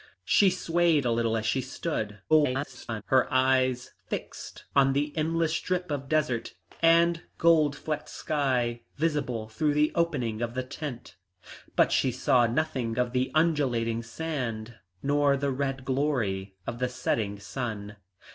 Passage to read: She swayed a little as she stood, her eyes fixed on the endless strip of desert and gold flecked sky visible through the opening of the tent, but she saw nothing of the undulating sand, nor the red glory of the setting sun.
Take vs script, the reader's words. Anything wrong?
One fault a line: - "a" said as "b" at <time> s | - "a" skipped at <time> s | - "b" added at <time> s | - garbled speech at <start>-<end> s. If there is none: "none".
- garbled speech at 2.3-3.0 s